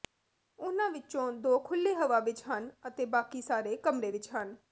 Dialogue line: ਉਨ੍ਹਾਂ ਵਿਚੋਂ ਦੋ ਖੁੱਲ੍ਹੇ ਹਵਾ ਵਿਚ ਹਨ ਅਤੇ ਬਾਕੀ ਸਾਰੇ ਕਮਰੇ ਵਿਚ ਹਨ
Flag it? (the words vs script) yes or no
no